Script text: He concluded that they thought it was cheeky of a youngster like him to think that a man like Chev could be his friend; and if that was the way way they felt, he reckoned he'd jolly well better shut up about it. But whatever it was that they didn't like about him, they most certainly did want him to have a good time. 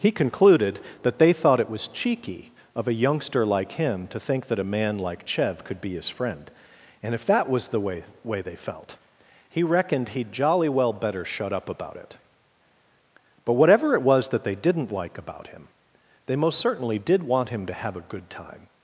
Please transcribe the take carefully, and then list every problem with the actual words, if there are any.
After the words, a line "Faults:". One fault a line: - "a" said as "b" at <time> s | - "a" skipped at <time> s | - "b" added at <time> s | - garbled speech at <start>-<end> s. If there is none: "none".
He concluded that they thought it was cheeky of a youngster like him to think that a man like Chev could be his friend; and if that was the way way they felt, he reckoned he'd jolly well better shut up about it. But whatever it was that they didn't like about him, they most certainly did want him to have a good time.
Faults:
none